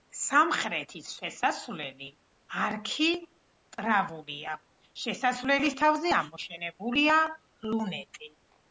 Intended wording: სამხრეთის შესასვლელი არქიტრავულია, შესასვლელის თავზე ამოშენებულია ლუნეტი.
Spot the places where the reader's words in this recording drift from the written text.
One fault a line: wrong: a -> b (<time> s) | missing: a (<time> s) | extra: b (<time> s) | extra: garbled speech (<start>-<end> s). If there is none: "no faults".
no faults